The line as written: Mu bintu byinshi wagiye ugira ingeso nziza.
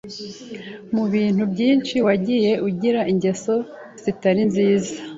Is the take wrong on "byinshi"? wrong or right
right